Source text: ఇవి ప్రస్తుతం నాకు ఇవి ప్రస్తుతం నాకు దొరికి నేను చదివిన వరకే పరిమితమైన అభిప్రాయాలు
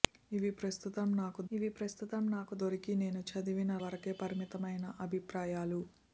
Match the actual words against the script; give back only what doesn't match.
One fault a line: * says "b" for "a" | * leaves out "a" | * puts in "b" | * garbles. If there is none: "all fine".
all fine